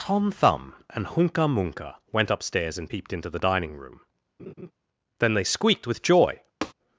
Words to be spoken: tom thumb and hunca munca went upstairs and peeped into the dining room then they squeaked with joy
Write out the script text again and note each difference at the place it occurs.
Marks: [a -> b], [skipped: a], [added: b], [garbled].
tom thumb and hunca munca went upstairs and peeped into the dining room then they squeaked with joy